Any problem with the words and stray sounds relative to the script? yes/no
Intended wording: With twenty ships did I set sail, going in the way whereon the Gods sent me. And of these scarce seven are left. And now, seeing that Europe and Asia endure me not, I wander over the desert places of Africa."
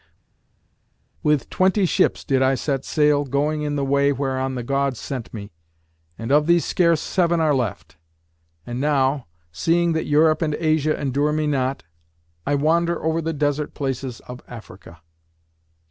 no